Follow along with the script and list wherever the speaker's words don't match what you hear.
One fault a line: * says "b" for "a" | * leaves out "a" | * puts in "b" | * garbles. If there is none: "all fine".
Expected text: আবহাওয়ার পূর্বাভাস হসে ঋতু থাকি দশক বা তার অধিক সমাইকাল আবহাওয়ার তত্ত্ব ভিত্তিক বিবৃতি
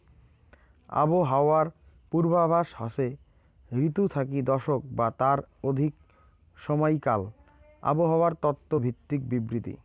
all fine